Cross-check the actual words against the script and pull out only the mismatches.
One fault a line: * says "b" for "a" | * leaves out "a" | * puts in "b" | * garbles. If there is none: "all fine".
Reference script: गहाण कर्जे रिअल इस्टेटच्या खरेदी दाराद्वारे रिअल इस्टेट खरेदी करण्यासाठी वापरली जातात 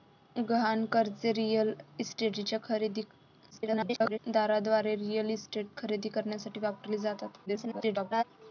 * garbles
* garbles